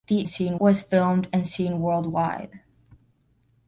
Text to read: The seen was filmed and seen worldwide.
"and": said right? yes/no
yes